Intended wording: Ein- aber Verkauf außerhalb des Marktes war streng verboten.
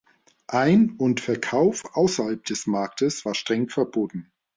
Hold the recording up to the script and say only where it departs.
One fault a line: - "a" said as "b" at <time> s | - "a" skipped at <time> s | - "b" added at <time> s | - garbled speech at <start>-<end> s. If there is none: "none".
- "aber" said as "und" at 1.0 s